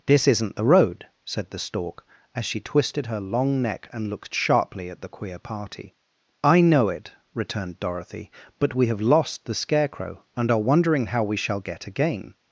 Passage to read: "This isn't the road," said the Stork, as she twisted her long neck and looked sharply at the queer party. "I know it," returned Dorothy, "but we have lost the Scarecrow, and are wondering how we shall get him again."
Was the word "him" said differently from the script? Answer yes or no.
yes